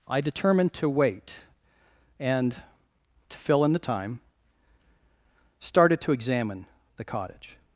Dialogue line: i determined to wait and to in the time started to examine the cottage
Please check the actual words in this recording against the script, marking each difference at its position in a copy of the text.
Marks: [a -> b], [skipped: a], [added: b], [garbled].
i determined to wait and to [added: fill] in the time started to examine the cottage